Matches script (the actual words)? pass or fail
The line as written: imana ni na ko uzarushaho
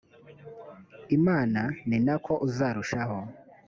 pass